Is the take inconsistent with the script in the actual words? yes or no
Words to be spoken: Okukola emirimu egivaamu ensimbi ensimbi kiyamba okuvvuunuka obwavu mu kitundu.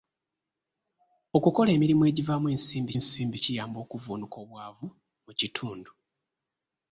no